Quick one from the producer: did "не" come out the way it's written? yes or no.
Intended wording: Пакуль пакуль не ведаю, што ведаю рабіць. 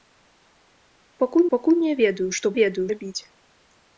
yes